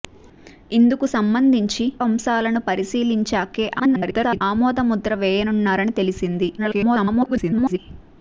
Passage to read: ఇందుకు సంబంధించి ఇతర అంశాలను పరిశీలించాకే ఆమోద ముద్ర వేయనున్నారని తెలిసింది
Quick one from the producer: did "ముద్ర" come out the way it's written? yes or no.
yes